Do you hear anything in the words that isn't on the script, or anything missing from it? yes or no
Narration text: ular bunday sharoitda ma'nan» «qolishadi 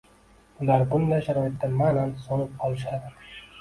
yes